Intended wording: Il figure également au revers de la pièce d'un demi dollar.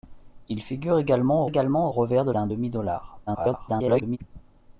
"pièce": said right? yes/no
no